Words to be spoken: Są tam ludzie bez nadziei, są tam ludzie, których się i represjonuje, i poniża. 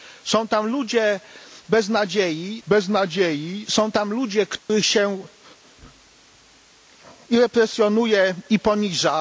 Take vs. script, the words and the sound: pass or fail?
fail